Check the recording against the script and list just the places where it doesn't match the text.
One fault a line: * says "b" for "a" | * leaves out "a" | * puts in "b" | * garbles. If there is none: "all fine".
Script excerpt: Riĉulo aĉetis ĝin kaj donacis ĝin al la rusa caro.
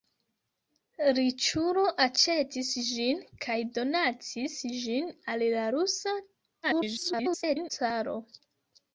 * garbles